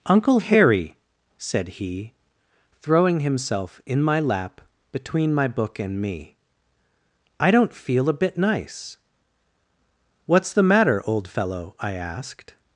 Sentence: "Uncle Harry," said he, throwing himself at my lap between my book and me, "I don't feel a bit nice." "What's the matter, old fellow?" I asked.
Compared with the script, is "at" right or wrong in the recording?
wrong